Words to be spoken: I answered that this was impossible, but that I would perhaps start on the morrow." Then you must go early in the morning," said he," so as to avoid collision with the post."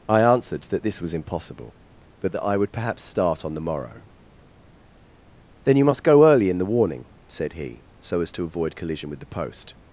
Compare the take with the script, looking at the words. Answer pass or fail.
fail